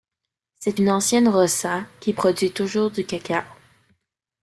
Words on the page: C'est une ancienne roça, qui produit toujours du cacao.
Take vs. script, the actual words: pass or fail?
pass